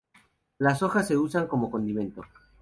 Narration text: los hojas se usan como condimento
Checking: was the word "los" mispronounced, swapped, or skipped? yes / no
yes